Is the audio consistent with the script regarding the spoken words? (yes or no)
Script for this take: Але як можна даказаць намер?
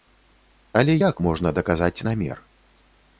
yes